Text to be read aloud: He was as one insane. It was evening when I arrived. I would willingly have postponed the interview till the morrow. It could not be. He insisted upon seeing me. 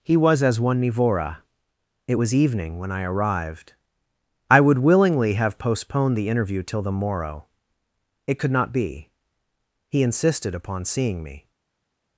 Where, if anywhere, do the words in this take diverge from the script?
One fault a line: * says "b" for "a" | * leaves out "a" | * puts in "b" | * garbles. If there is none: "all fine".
* says "nivora" for "insane"